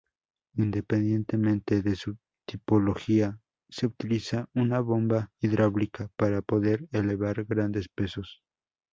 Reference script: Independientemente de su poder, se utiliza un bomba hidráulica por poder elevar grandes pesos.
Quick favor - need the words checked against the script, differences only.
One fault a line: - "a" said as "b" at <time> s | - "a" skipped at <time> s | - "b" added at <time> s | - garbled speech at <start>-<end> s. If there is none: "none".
- "poder" said as "tipología" at 2.5 s
- "un" said as "una" at 4.5 s
- "por" said as "para" at 6.2 s